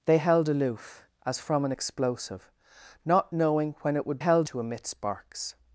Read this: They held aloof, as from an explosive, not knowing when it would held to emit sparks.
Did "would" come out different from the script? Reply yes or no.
no